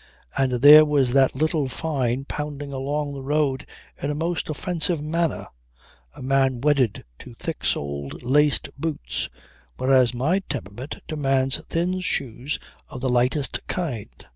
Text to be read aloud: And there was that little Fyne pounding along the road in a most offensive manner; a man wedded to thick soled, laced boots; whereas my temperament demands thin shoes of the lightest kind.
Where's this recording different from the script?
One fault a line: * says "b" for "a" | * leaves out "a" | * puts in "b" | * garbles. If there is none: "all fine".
all fine